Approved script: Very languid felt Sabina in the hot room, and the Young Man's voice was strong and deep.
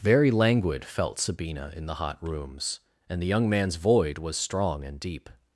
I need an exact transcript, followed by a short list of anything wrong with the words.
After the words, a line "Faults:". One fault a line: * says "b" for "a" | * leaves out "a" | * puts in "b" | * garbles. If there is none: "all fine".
Very languid felt Sabina in the hot rooms, and the Young Man's void was strong and deep.
Faults:
* says "rooms" for "room"
* says "void" for "voice"